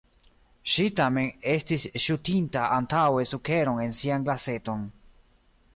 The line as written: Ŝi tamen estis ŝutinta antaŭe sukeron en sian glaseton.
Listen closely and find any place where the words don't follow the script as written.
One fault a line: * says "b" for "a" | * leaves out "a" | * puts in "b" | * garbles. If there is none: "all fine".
all fine